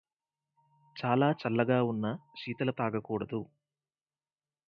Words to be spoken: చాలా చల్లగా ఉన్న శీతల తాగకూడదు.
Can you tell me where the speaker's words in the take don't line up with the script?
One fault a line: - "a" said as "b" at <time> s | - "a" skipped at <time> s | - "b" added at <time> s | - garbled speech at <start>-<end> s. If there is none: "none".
none